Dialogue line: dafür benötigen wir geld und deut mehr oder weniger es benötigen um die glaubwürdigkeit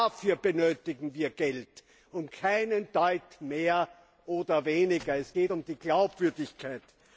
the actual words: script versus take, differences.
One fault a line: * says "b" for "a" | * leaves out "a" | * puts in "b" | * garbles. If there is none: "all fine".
* puts in "keinen"
* says "geht" for "benötigen"